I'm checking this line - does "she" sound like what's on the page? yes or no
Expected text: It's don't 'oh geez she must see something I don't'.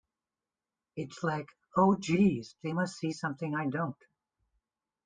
no